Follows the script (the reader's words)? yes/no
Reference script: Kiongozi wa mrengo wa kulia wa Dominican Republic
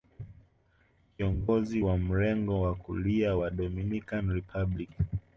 yes